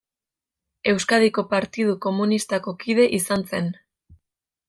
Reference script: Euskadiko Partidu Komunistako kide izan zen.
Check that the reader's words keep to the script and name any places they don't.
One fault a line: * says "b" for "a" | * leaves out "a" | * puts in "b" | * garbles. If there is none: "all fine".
all fine